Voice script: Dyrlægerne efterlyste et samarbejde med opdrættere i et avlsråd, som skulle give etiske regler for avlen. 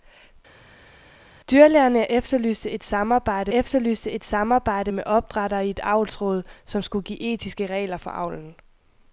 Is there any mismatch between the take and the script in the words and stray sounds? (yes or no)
yes